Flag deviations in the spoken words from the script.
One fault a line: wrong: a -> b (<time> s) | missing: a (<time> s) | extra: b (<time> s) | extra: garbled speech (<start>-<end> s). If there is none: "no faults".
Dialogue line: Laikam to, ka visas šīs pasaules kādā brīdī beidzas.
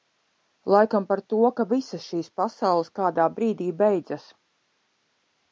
extra: par (1.1 s)